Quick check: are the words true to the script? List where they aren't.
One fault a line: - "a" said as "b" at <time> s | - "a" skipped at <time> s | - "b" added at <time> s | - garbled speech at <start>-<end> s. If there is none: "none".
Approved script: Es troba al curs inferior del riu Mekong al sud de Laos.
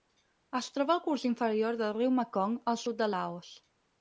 none